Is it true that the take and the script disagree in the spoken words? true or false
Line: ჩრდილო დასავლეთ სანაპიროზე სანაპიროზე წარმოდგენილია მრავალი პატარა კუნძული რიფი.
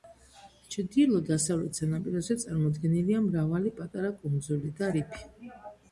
true